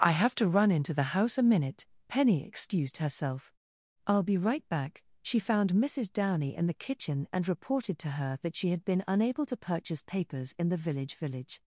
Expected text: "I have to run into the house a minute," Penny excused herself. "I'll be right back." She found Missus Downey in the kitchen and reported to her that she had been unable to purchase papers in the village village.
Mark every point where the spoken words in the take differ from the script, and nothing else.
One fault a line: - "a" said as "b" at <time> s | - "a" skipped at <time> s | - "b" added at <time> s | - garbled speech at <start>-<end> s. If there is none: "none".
none